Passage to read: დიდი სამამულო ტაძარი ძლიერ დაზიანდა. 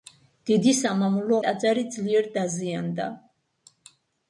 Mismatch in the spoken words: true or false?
false